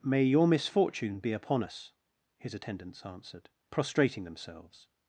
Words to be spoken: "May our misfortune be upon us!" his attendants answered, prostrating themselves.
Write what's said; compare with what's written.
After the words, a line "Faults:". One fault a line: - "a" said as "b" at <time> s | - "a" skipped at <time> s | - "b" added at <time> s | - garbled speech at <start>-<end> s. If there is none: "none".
"May your misfortune be upon us!" his attendants answered, prostrating themselves.
Faults:
- "our" said as "your" at 0.2 s